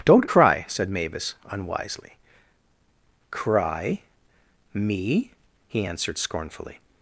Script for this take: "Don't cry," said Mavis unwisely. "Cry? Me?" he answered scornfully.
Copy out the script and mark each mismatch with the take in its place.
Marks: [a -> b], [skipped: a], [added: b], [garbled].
"Don't cry," said Mavis unwisely. "Cry? Me?" he answered scornfully.